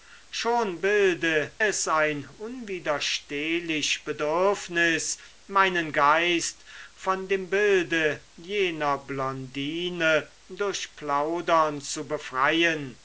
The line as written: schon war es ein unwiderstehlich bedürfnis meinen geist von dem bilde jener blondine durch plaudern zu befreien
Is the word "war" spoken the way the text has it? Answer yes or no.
no